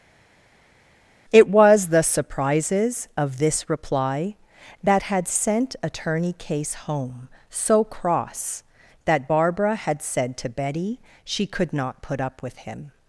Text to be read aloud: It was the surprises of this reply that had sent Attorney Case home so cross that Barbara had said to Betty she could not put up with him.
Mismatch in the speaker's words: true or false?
false